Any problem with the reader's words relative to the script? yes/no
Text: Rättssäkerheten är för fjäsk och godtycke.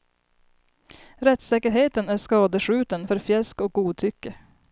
yes